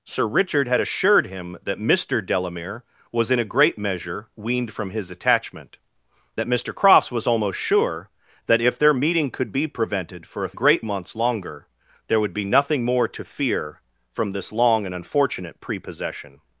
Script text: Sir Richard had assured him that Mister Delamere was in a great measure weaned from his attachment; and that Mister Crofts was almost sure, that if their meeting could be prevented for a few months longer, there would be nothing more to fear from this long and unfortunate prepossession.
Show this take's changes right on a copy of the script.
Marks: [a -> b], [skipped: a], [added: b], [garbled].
Sir Richard had assured him that Mister Delamere was in a great measure weaned from his attachment; [skipped: and] that Mister Crofts was almost sure, that if their meeting could be prevented for a [few -> great] months longer, there would be nothing more to fear from this long and unfortunate prepossession.